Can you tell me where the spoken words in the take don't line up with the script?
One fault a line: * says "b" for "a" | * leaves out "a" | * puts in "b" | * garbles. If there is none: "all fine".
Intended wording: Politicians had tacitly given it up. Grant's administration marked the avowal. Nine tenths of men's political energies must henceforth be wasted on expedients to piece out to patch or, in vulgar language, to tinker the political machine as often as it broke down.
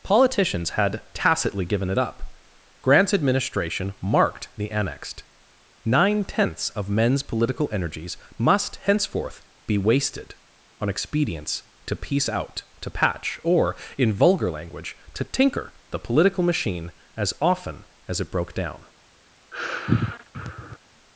* says "annexed" for "avowal"